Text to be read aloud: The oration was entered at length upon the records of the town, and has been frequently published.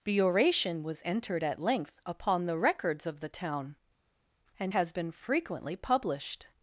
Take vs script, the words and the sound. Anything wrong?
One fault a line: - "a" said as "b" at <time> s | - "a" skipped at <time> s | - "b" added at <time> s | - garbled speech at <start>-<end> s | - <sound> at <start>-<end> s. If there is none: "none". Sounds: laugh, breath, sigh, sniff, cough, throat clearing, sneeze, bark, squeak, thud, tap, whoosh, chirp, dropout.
none